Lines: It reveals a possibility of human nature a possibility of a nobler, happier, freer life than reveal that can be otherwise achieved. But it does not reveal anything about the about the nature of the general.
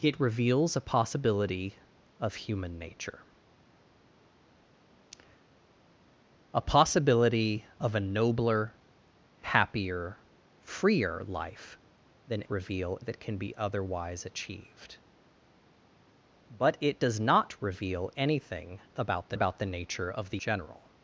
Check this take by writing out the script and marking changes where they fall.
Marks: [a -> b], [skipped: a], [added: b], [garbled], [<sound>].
It reveals a possibility of human nature a possibility of a nobler, happier, freer life than reveal that can be otherwise achieved. But it does not reveal anything about the about the nature of the general.